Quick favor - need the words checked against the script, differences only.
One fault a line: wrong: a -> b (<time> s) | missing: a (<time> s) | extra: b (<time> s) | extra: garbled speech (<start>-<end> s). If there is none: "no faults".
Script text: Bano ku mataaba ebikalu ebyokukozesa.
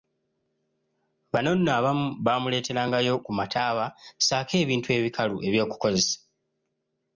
extra: nno abamu baamuleeterangayo (1.6 s)
extra: ssaako ebintu (4.2 s)